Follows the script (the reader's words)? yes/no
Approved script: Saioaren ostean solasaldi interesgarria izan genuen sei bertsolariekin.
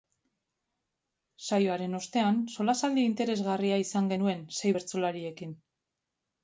yes